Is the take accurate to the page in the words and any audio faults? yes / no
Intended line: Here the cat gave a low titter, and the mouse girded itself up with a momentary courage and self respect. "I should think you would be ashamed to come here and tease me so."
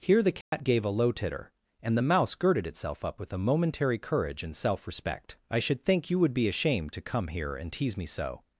no